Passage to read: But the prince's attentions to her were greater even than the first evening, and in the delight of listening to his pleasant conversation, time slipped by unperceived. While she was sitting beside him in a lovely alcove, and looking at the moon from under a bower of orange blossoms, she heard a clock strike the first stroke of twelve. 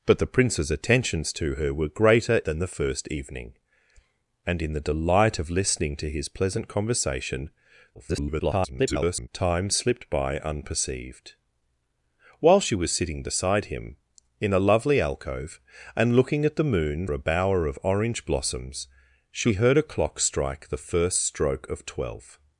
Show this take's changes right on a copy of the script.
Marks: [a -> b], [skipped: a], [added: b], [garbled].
But the prince's attentions to her were greater [skipped: even] than the first evening, and in the delight of listening to his pleasant conversation, [garbled] time slipped by unperceived. While she was sitting beside him in a lovely alcove, and looking at the moon [skipped: from under] a bower of orange blossoms, she heard a clock strike the first stroke of twelve.